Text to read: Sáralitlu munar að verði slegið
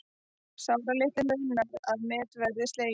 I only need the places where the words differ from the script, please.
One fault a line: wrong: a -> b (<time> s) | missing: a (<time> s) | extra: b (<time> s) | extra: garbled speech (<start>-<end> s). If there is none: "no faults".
extra: met (2.1 s)